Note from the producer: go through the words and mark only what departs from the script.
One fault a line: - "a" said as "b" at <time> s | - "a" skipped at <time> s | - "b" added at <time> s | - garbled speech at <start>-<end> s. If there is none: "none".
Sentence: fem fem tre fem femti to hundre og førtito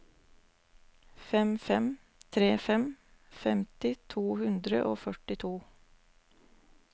none